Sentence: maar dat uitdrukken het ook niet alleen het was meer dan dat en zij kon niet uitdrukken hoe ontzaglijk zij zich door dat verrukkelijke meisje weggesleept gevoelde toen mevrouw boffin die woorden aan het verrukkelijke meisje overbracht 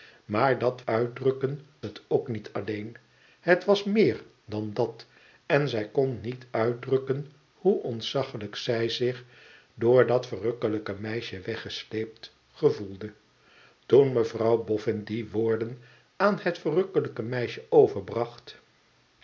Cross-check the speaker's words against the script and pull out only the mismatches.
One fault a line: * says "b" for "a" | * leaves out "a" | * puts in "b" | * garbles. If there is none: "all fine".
all fine